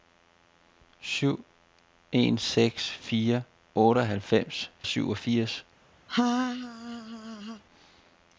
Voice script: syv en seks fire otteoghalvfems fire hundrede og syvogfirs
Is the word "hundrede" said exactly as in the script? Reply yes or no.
no